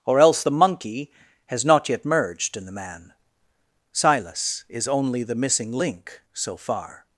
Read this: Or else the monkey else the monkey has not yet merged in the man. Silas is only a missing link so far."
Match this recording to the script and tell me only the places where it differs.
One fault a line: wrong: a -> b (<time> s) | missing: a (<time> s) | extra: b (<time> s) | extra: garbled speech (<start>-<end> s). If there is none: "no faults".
missing: else the monkey (1.1 s)
wrong: a -> the (5.2 s)